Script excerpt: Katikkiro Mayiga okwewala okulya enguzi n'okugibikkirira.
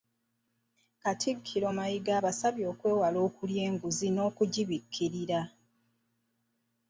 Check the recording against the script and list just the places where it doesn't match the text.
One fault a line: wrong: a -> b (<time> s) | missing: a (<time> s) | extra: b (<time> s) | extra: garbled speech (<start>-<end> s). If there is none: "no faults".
extra: abasabye (2.2 s)